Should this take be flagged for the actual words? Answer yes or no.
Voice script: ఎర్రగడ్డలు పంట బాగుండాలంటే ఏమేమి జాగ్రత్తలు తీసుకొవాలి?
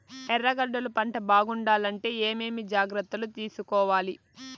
no